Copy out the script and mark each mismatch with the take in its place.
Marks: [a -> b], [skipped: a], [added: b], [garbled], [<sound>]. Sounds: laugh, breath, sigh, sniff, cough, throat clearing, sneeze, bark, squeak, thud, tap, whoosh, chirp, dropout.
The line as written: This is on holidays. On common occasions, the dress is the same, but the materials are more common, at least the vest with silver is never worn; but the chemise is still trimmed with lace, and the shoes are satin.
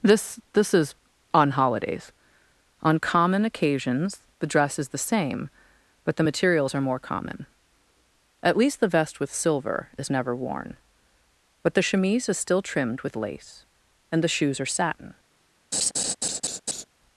This [added: this] is on holidays. On common occasions, the dress is the same, but the materials are more common, at least the vest with silver is never worn; but the chemise is still trimmed with lace, and the shoes are satin. [laugh]